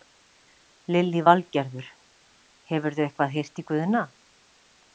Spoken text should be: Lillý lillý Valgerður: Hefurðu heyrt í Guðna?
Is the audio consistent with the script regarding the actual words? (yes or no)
no